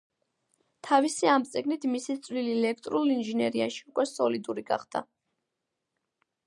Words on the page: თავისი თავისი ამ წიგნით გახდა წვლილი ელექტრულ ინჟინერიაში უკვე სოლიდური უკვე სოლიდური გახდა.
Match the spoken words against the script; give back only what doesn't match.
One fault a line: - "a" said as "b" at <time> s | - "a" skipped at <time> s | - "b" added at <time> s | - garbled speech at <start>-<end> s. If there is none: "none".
- "თავისი" skipped at 1.3 s
- "გახდა" said as "მისი" at 2.0 s
- "უკვე სოლიდური" skipped at 4.7 s